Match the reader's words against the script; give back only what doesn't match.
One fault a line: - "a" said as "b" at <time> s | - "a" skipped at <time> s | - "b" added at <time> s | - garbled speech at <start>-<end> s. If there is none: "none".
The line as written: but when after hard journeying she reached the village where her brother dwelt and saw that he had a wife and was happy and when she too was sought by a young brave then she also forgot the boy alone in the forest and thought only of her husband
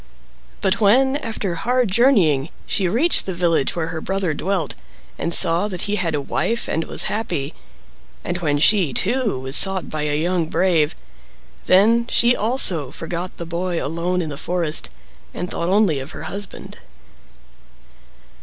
none